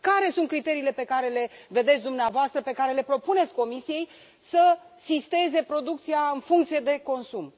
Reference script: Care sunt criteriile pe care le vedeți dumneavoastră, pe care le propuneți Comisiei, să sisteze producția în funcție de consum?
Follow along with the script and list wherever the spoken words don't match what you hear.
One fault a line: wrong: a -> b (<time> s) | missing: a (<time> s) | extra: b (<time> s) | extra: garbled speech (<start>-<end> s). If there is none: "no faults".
no faults